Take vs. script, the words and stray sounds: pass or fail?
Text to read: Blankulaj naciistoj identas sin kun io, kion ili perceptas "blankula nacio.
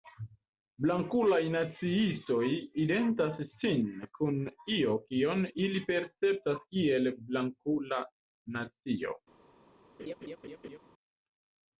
fail